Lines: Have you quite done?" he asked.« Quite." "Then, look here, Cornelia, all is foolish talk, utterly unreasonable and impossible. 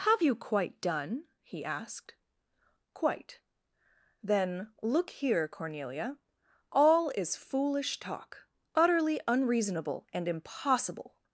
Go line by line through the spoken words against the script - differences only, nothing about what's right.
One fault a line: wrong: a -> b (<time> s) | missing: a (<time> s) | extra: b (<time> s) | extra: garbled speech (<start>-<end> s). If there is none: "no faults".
no faults